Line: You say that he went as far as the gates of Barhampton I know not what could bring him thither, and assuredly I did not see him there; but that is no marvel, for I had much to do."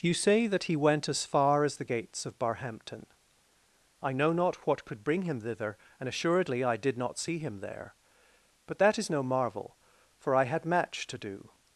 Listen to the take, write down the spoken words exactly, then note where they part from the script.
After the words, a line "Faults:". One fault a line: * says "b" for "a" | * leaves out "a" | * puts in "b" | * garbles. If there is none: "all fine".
You say that he went as far as the gates of Barhampton I know not what could bring him thither, and assuredly I did not see him there; but that is no marvel, for I had match to do."
Faults:
* says "match" for "much"